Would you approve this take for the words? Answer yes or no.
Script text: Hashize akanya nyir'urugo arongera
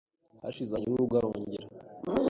no